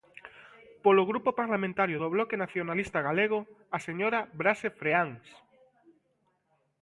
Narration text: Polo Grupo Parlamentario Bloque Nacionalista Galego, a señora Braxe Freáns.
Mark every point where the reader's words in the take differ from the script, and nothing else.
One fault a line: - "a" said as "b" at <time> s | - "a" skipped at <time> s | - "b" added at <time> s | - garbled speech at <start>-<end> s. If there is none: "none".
- "do" added at 2.0 s